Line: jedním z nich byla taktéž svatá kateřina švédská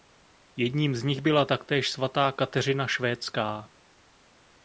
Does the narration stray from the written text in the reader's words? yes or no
no